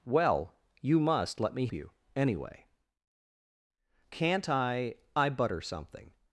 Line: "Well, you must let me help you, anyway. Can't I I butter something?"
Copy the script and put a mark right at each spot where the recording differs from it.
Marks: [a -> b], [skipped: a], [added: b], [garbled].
"Well, you must let me [skipped: help] you, anyway. Can't I I butter something?"